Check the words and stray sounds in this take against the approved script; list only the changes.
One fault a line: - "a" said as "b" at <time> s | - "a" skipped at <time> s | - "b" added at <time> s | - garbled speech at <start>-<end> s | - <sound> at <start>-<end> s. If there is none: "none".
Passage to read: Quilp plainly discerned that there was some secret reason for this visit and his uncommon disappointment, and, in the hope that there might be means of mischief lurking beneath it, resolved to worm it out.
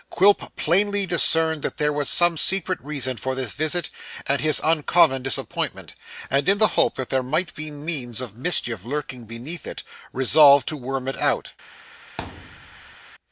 - thud at 12.2-13.0 s